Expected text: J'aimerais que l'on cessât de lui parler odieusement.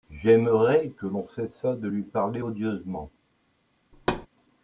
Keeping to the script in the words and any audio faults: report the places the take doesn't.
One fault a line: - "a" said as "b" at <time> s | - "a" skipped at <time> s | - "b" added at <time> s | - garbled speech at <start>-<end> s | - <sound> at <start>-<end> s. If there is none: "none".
- thud at 3.9-4.3 s